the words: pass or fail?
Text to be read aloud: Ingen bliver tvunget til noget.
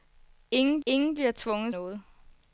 fail